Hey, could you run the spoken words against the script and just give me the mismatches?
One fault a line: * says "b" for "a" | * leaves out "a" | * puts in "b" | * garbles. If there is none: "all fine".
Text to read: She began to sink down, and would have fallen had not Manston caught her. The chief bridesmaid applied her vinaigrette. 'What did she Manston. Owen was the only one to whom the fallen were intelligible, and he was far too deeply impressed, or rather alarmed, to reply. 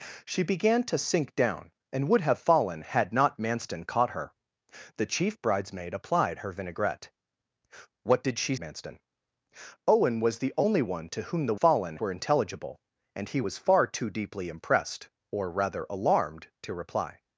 all fine